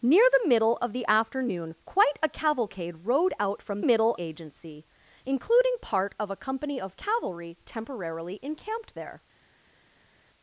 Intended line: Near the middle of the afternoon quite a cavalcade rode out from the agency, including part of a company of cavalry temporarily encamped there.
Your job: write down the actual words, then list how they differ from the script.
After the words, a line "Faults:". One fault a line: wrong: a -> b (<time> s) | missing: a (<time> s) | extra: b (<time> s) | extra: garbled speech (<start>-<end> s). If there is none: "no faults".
Near the middle of the afternoon quite a cavalcade rode out from middle agency, including part of a company of cavalry temporarily encamped there.
Faults:
wrong: the -> middle (3.9 s)